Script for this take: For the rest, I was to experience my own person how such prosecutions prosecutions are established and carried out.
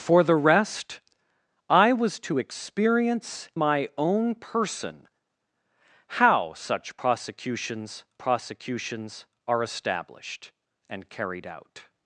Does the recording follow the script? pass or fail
pass